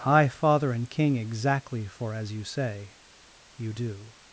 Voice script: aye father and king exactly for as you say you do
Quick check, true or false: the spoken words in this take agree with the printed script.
false